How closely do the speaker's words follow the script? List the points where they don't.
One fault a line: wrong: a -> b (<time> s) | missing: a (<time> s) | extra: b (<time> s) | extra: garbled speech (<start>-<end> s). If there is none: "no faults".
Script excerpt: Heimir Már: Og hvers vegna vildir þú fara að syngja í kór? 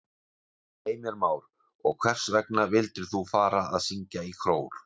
no faults